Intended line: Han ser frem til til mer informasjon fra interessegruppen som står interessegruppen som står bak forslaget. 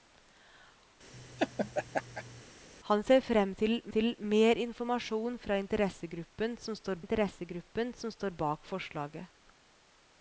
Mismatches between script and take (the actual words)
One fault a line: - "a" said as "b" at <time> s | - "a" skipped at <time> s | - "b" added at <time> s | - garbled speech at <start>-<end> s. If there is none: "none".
none